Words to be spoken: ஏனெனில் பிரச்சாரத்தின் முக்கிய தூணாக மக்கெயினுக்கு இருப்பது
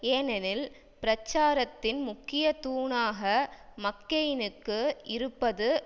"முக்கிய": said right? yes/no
yes